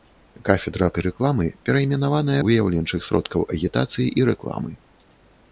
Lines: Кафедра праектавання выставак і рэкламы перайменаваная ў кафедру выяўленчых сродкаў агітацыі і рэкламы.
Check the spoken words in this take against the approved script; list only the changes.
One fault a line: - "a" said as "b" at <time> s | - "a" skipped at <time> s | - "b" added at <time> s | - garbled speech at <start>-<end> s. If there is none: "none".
- "праектавання выставак" skipped at 0.8 s
- "ў кафедру" skipped at 2.4 s